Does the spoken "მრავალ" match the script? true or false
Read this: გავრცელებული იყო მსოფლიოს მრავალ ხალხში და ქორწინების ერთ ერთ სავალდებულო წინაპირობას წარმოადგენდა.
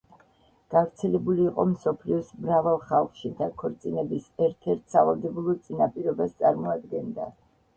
true